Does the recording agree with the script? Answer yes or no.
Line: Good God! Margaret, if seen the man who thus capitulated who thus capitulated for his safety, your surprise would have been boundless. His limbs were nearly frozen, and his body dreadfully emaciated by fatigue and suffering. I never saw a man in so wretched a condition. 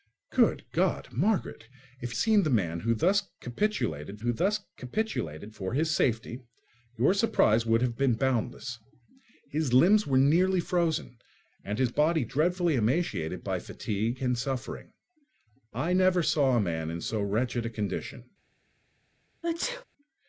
yes